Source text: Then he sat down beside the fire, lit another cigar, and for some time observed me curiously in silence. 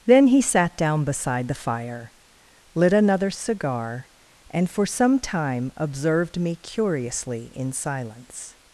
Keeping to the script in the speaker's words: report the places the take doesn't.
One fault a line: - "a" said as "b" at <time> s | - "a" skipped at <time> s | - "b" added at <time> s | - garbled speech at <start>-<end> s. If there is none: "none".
none